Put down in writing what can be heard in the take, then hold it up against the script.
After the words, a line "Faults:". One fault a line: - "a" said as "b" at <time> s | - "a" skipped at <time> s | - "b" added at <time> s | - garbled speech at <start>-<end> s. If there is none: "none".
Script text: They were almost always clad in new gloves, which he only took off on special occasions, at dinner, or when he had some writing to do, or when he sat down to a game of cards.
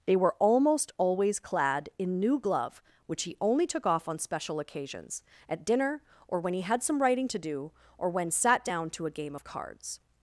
They were almost always clad in new glove, which he only took off on special occasions, at dinner, or when he had some writing to do, or when sat down to a game of cards.
Faults:
- "gloves" said as "glove" at 2.4 s
- "he" skipped at 8.3 s